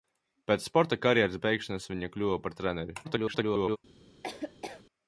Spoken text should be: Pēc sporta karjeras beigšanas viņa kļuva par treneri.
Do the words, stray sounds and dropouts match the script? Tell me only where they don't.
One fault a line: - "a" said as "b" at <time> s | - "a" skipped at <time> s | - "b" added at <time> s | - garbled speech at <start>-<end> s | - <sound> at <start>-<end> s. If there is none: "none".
- garbled speech at 3.0-3.8 s
- laugh at 4.2-4.8 s